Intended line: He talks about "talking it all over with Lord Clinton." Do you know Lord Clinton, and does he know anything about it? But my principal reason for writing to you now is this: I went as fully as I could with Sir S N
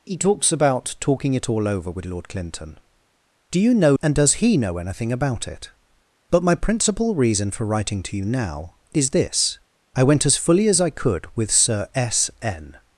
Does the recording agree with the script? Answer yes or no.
no